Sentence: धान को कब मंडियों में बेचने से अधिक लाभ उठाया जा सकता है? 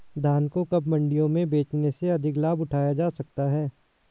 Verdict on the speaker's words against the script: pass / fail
pass